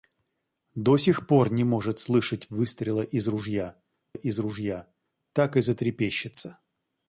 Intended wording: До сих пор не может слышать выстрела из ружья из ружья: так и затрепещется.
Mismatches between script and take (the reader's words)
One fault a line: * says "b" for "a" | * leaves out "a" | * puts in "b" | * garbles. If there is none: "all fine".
all fine